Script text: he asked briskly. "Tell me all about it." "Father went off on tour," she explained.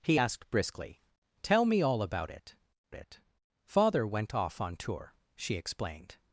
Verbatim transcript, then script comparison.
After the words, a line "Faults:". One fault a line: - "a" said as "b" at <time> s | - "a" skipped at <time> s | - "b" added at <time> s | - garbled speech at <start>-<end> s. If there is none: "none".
he asked briskly. "Tell me all about it it." "Father went off on tour," she explained.
Faults:
- "it" added at 2.9 s